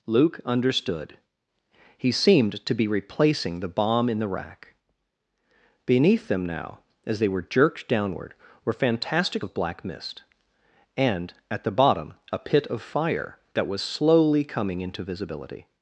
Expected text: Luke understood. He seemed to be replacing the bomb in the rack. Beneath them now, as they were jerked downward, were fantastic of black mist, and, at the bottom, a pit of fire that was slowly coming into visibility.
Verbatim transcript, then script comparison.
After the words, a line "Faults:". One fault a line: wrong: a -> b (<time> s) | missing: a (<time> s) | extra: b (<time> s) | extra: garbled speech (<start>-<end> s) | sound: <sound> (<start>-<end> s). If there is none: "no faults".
Luke understood. He seemed to be replacing the bomb in the rack. Beneath them now, as they were jerked downward, were fantastic of black mist, and, at the bottom, a pit of fire that was slowly coming into visibility.
Faults:
no faults